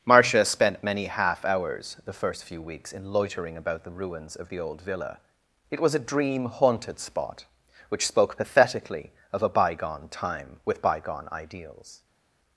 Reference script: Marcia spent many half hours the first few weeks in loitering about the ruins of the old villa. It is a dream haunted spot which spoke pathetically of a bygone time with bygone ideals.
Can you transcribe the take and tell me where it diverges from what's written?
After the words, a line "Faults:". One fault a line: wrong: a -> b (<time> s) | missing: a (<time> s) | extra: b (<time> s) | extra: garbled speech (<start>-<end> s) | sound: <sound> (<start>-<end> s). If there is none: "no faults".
Marcia spent many half hours the first few weeks in loitering about the ruins of the old villa. It was a dream haunted spot which spoke pathetically of a bygone time with bygone ideals.
Faults:
wrong: is -> was (5.8 s)